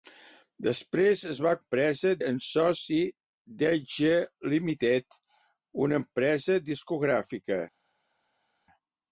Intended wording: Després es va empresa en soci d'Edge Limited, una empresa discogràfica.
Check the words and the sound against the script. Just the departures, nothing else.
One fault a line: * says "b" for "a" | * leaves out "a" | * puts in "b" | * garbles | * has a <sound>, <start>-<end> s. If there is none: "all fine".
all fine